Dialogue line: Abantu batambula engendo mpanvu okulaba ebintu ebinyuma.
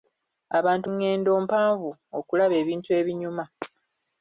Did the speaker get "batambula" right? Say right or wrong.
wrong